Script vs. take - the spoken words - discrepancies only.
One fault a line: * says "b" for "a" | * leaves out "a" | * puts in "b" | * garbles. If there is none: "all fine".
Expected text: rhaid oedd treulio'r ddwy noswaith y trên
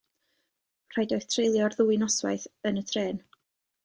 * puts in "yn"